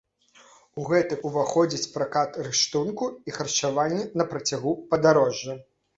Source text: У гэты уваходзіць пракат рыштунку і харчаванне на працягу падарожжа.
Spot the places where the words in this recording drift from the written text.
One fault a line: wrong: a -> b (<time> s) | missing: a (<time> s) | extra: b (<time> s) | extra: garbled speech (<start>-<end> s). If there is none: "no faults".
no faults